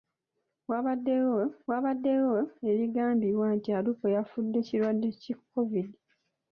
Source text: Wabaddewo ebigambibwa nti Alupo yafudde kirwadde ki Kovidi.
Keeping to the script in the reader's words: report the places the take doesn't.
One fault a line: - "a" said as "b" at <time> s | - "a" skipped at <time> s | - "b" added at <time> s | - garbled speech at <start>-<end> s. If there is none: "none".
- "wabaddewo" added at 1.7 s